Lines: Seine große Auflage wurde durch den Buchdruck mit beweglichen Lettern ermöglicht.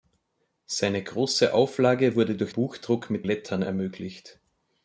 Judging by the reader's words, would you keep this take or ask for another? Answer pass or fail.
fail